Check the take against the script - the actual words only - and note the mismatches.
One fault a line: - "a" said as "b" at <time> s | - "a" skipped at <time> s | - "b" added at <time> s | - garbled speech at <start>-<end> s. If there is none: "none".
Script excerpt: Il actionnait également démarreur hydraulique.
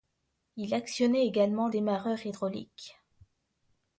none